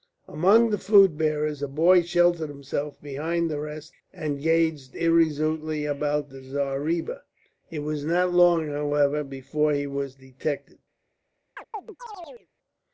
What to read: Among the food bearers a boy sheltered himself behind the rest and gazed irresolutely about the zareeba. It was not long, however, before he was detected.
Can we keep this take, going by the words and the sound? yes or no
no